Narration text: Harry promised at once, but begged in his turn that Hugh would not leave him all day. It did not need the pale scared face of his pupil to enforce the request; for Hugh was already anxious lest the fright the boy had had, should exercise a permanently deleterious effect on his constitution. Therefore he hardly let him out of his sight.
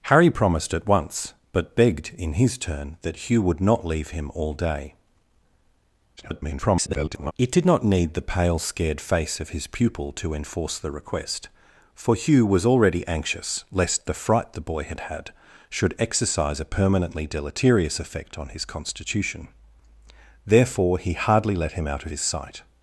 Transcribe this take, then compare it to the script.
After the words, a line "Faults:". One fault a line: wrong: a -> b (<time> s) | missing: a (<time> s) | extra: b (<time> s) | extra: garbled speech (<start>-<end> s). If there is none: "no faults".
Harry promised at once, but begged in his turn that Hugh would not leave him all day. [garbled] It did not need the pale scared face of his pupil to enforce the request; for Hugh was already anxious lest the fright the boy had had, should exercise a permanently deleterious effect on his constitution. Therefore he hardly let him out of his sight.
Faults:
extra: garbled speech (6.2-7.3 s)